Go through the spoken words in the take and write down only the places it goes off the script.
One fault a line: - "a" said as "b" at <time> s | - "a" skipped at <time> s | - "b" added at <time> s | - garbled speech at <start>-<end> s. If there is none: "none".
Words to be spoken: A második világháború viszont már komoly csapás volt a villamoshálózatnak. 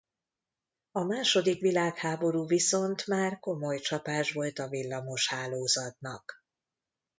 none